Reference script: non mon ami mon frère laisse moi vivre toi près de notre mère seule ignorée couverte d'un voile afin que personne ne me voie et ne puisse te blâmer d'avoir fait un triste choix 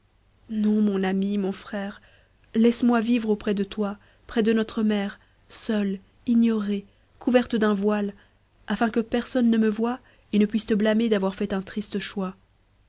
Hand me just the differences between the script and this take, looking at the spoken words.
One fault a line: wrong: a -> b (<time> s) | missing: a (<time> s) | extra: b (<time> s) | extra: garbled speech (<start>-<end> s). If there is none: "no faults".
extra: auprès de (3.3 s)